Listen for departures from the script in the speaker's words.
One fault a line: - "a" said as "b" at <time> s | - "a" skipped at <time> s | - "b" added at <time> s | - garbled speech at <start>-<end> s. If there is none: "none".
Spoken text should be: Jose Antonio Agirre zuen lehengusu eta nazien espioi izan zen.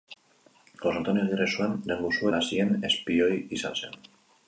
- "eta" skipped at 2.3 s